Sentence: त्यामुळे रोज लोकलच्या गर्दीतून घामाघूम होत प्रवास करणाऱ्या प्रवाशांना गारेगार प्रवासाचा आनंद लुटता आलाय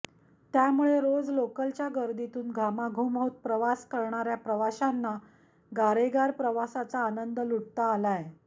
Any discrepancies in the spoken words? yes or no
no